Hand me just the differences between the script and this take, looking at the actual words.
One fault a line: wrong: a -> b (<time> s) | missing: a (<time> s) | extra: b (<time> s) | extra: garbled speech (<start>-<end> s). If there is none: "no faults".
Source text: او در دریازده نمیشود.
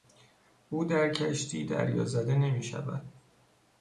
extra: کشتی (1.1 s)